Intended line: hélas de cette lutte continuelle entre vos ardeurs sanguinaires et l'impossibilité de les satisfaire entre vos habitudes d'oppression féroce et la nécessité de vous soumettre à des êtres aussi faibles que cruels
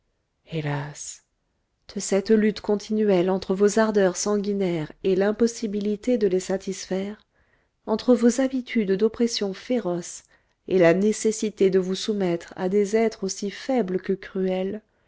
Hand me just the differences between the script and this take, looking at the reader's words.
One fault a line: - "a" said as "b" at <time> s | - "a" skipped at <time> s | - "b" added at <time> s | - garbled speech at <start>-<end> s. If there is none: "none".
none